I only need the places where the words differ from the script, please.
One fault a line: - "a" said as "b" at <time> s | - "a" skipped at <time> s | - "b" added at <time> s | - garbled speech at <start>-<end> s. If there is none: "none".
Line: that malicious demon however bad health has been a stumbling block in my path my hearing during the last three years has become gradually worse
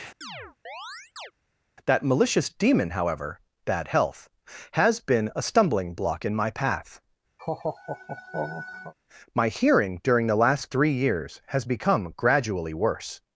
none